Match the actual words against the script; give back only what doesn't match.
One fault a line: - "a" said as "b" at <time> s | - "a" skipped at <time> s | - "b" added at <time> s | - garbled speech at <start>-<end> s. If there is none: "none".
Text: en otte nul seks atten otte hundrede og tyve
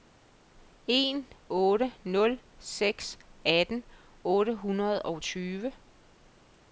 none